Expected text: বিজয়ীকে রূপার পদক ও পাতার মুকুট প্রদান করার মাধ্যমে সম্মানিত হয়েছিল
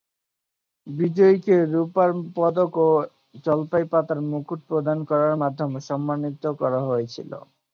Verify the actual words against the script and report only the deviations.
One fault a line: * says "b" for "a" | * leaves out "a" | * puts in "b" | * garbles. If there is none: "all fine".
* puts in "জলপাই"
* puts in "করা"